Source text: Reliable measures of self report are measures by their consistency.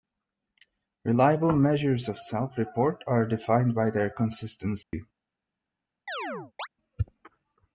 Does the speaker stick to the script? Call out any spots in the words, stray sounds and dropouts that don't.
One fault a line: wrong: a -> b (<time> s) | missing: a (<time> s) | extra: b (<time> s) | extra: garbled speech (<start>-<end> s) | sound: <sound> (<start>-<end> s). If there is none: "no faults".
wrong: measures -> defined (3.3 s)
sound: dropout (4.8-4.9 s)
sound: chirp (6.1-6.7 s)